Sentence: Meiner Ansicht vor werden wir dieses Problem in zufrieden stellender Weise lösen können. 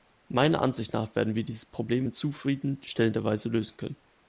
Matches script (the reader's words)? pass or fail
fail